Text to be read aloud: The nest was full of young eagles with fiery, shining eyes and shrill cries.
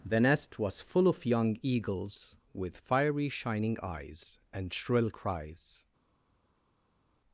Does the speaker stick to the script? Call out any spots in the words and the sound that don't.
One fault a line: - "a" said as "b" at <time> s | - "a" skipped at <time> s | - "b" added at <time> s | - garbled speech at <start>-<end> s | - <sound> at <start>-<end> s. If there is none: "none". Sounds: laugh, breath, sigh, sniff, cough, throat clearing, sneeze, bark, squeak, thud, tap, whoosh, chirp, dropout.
none